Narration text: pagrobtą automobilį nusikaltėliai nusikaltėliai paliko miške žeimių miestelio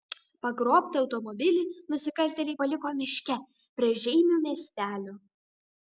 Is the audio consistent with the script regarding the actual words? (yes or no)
no